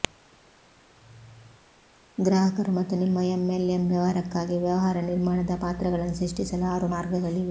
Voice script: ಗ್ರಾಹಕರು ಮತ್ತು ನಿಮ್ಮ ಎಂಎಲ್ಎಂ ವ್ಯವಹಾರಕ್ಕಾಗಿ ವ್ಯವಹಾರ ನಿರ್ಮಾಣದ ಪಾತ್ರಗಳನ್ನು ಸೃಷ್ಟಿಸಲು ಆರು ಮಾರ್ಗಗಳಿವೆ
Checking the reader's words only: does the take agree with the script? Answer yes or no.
yes